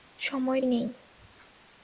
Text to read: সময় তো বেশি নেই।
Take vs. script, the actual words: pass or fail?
fail